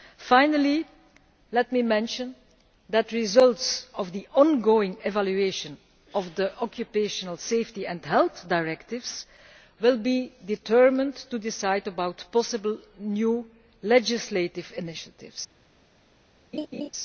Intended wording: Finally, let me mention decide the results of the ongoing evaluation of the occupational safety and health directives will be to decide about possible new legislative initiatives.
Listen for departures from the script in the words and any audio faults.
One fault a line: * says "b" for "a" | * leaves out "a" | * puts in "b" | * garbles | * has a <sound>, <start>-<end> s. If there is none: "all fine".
* says "that" for "decide"
* puts in "determined"
* has a laugh, 16.5-16.9 s